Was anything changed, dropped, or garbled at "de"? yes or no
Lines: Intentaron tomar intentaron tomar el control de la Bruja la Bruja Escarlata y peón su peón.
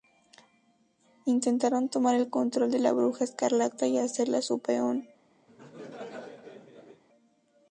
no